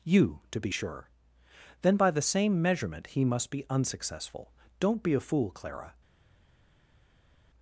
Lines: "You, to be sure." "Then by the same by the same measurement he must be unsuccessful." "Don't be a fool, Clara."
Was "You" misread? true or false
false